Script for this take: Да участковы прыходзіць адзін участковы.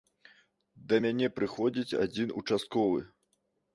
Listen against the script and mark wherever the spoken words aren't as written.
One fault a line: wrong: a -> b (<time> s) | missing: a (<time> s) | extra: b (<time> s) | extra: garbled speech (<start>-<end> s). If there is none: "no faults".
wrong: участковы -> мяне (1.0 s)